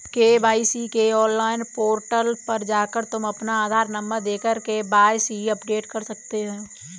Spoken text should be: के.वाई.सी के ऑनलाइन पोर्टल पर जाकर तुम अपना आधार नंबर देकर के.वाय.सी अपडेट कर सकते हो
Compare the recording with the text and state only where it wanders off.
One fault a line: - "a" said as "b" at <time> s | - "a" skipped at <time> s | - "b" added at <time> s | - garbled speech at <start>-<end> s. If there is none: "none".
none